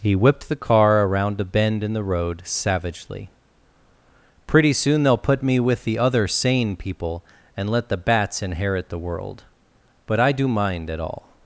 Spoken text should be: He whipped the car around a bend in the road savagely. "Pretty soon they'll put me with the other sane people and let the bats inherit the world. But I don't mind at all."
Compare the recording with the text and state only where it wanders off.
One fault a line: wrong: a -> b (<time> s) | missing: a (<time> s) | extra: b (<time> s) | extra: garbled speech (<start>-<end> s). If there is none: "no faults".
wrong: don't -> do (10.3 s)